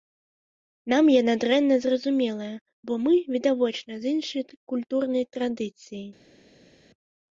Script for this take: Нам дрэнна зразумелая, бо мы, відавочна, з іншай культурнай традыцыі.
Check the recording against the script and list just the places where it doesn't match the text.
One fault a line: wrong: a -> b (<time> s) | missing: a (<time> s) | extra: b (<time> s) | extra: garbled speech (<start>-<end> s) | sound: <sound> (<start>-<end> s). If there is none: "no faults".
extra: яна (1.2 s)